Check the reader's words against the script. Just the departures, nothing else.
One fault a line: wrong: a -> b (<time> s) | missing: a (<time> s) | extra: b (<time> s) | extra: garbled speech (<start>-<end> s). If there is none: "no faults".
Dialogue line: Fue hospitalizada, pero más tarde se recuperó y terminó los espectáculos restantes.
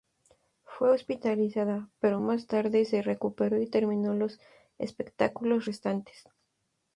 no faults